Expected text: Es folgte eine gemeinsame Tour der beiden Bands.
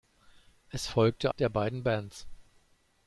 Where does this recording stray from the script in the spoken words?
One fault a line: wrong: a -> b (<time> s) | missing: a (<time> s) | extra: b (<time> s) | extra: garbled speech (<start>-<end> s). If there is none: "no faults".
missing: eine gemeinsame Tour (1.3 s)